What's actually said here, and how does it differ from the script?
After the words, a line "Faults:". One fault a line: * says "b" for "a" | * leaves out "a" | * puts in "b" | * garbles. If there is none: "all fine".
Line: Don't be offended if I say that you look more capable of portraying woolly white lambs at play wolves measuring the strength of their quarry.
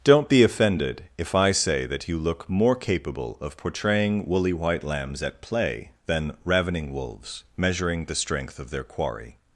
Don't be offended if I say that you look more capable of portraying woolly white lambs at play than ravening wolves measuring the strength of their quarry.
Faults:
* puts in "than ravening"